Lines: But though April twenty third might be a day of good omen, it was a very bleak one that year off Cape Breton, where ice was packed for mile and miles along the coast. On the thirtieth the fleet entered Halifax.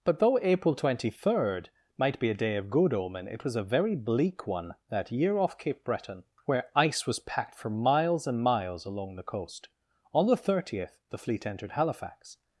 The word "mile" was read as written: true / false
false